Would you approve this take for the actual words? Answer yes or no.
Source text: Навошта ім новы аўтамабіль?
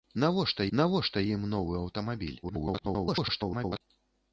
no